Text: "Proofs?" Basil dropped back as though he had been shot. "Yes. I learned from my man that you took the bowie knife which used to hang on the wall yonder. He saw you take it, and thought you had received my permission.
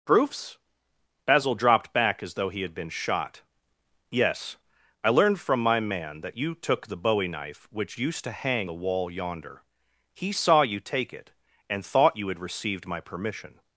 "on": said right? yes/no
no